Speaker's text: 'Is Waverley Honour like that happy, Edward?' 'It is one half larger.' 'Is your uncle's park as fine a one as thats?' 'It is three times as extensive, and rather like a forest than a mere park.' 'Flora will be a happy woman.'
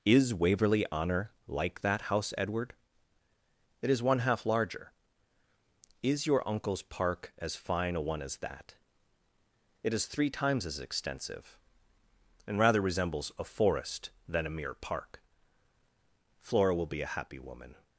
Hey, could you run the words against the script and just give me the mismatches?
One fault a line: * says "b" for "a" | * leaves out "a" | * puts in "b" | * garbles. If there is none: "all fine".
* says "house" for "happy"
* says "that" for "thats"
* says "resembles" for "like"